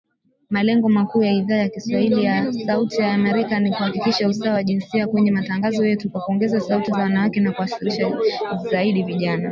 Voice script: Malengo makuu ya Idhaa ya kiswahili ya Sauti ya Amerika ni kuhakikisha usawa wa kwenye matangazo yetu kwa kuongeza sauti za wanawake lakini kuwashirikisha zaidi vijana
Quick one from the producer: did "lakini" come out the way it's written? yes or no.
no